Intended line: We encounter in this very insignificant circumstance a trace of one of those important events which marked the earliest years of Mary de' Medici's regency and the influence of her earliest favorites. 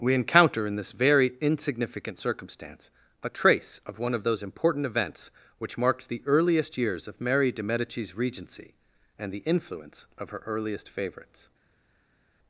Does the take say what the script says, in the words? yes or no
yes